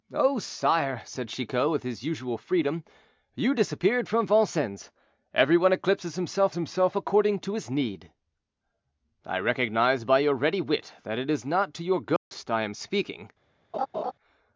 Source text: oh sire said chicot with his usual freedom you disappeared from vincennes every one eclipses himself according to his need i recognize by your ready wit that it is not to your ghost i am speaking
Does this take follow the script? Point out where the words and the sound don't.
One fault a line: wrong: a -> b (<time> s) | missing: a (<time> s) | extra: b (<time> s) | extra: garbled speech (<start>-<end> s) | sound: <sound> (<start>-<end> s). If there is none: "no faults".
extra: himself (6.5 s)
sound: dropout (12.2-12.3 s)
sound: laugh (13.7-14.1 s)